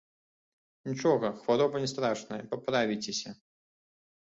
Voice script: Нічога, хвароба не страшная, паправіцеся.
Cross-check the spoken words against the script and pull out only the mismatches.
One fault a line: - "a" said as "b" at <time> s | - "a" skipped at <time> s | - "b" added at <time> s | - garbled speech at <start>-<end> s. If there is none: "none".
none